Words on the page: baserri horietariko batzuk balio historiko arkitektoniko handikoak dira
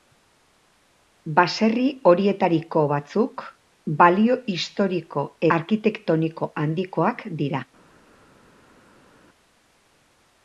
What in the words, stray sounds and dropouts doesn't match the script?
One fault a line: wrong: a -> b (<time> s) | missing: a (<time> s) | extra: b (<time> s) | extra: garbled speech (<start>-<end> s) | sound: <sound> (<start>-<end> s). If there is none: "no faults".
no faults